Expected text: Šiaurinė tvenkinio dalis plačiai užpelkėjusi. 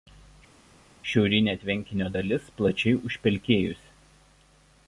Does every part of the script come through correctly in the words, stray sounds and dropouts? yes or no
yes